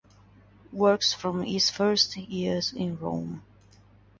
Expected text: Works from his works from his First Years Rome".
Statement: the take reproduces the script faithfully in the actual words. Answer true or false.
false